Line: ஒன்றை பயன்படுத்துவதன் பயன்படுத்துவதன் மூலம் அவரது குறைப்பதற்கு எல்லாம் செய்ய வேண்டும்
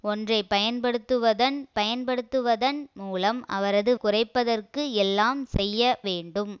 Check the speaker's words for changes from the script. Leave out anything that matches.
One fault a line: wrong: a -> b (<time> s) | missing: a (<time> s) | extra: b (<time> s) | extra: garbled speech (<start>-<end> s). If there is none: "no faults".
no faults